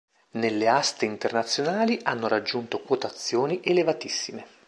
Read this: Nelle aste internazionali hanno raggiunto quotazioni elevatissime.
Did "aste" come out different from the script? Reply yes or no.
no